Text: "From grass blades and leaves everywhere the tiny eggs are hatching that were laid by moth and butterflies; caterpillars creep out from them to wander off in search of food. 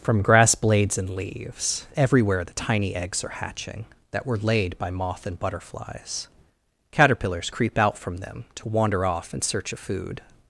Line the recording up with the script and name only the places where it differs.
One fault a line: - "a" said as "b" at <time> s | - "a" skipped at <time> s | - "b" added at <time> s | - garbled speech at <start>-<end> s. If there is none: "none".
none